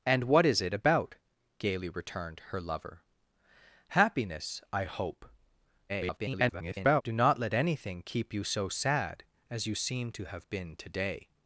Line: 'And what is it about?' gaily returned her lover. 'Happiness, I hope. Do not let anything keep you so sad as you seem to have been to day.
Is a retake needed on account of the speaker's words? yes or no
yes